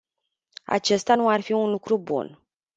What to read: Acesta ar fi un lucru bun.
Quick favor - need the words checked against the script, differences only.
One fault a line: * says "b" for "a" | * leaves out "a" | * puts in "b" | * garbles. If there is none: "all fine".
* puts in "nu"